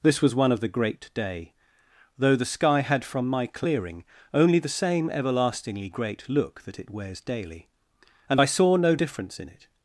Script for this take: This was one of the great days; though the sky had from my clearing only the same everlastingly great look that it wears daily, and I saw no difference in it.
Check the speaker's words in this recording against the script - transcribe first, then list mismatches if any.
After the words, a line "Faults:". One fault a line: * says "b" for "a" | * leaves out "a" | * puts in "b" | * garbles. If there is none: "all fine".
This was one of the great day; though the sky had from my clearing only the same everlastingly great look that it wears daily, and I saw no difference in it.
Faults:
* says "day" for "days"